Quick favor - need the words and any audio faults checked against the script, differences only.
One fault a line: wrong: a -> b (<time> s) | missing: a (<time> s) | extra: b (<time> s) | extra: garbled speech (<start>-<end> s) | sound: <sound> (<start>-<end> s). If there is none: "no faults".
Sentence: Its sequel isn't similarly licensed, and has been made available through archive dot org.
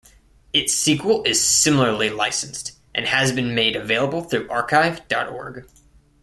wrong: isn't -> is (1.2 s)